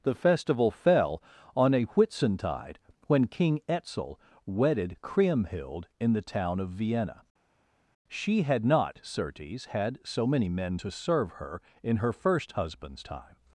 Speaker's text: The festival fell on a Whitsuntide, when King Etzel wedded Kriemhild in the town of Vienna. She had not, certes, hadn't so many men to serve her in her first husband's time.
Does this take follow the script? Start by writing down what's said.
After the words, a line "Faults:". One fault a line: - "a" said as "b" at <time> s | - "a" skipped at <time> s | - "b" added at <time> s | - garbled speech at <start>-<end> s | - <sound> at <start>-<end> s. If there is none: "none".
The festival fell on a Whitsuntide, when King Etzel wedded Kriemhild in the town of Vienna. She had not, certes, had so many men to serve her in her first husband's time.
Faults:
- "hadn't" said as "had" at 9.6 s